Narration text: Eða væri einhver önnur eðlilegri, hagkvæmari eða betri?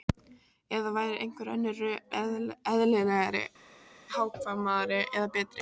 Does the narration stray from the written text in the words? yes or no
no